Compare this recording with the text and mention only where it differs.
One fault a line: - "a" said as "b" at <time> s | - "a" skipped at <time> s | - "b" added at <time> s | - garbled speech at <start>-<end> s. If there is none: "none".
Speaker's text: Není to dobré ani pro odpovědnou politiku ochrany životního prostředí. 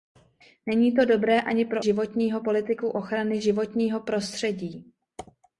- "odpovědnou" said as "životního" at 1.8 s